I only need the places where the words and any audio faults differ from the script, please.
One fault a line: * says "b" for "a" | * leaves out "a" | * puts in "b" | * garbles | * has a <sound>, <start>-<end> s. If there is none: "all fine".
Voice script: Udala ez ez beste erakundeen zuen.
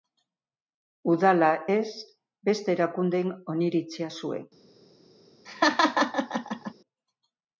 * leaves out "ez"
* puts in "oniritzia"
* has a laugh, 5.5-6.7 s